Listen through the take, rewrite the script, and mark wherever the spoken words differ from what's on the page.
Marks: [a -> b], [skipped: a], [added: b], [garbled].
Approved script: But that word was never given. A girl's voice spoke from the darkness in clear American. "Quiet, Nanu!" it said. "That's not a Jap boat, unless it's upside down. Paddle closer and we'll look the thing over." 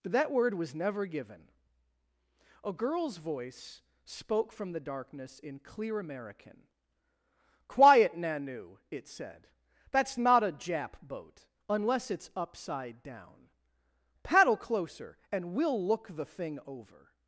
But that word was never given. A girl's voice spoke from the darkness in clear American. "Quiet, Nanu!" it said. "That's not a Jap boat, unless it's upside down. Paddle closer and we'll look the thing over."